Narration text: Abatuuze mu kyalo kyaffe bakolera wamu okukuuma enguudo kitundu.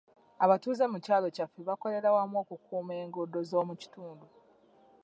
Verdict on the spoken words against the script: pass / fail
fail